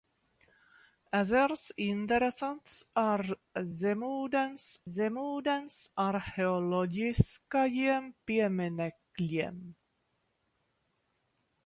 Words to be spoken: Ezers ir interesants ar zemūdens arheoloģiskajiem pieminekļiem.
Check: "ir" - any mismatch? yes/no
yes